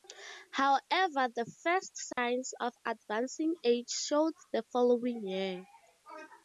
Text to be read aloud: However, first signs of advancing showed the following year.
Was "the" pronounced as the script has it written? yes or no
yes